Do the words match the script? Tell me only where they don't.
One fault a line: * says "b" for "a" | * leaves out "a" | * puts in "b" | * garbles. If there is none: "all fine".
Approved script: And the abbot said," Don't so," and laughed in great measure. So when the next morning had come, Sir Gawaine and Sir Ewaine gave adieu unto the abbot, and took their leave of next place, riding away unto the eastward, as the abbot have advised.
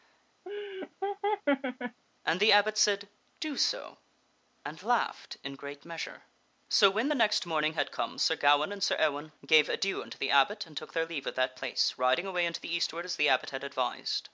* says "Do" for "Don't"
* says "that" for "next"
* says "had" for "have"